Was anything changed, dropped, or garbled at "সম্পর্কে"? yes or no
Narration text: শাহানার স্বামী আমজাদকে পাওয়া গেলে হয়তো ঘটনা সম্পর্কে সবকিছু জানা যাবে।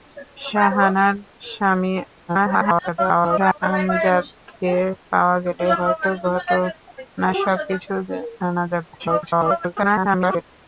yes